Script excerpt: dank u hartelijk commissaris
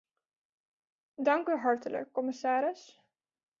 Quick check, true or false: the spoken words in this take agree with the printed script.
true